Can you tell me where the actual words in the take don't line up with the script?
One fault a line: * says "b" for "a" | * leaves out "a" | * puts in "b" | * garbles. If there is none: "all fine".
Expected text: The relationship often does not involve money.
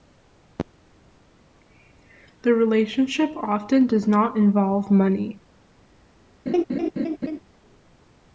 all fine